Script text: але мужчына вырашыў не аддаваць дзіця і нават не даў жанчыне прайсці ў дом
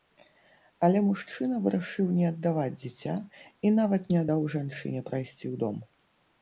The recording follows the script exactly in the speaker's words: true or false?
true